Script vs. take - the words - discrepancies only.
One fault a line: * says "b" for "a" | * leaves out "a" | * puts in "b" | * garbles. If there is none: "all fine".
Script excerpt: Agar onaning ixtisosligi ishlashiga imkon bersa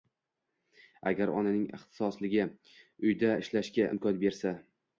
* puts in "uyda"